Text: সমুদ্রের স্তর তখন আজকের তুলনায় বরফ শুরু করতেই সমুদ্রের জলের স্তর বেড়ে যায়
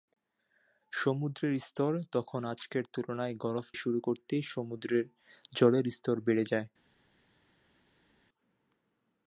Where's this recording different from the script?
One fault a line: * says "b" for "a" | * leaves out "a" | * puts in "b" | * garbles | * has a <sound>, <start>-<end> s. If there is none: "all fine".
all fine